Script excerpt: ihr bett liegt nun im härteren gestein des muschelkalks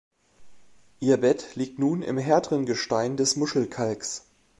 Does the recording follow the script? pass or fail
pass